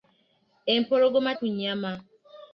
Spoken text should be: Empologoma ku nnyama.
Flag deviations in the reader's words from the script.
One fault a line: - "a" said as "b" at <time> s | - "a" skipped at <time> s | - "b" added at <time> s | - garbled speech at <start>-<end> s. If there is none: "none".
none